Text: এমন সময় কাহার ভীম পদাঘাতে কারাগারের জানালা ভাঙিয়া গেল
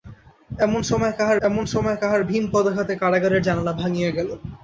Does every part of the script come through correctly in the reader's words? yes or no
no